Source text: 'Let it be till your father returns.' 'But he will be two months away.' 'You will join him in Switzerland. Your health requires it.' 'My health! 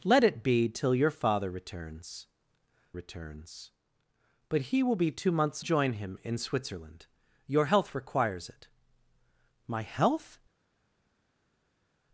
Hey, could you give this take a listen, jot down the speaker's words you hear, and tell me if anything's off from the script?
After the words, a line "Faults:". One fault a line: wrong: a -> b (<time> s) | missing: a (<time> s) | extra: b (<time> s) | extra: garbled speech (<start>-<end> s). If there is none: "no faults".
'Let it be till your father returns returns.' 'But he will be two months join him in Switzerland. Your health requires it.' 'My health!
Faults:
extra: returns (2.9 s)
missing: away You will (5.6 s)